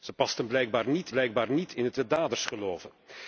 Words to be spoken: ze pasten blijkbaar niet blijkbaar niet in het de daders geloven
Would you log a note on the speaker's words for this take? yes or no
no